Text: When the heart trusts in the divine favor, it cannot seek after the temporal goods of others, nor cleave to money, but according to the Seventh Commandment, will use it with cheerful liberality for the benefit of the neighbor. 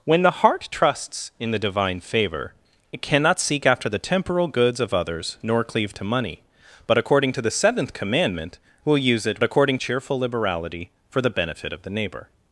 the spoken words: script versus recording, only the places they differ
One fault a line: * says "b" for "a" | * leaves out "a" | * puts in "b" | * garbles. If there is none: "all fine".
* says "according" for "with"